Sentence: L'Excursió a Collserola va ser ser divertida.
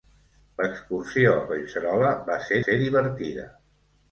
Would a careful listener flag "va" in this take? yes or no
no